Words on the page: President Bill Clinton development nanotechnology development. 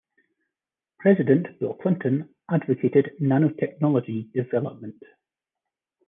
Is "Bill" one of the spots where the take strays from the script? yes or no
no